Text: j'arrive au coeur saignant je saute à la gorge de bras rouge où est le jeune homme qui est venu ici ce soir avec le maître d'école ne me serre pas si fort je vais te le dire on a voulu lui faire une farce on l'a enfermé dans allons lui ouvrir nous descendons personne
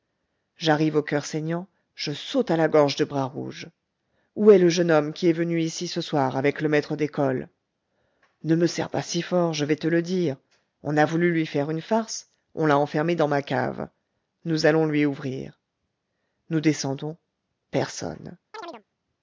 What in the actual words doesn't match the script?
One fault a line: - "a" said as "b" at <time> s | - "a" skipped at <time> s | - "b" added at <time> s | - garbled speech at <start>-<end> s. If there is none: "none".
- "ma cave nous" added at 13.3 s